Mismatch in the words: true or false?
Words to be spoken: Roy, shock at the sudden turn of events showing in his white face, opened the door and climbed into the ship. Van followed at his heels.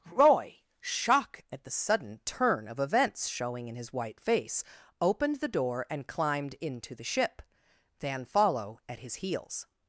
true